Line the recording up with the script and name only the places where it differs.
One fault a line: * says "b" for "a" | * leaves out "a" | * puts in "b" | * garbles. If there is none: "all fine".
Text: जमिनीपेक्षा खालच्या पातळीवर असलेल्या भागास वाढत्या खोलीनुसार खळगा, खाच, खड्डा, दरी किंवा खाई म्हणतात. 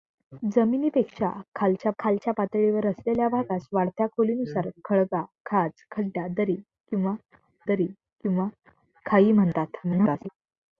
* puts in "खालच्या"
* puts in "दरी किंवा"
* garbles